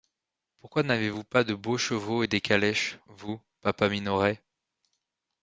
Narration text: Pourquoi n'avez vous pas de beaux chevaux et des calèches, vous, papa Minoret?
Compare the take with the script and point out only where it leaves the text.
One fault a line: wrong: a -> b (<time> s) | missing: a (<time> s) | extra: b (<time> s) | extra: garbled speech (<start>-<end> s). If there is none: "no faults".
no faults